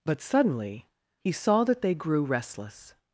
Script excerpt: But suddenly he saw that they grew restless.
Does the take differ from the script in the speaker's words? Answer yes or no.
no